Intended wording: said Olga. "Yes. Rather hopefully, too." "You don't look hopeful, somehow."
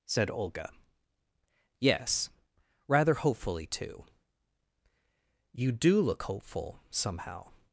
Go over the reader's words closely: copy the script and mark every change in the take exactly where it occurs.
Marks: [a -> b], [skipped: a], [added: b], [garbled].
said Olga. "Yes. Rather hopefully, too." "You [don't -> do] look hopeful, somehow."